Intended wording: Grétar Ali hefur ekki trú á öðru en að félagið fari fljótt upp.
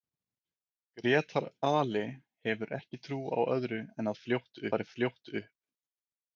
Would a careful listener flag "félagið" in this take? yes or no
yes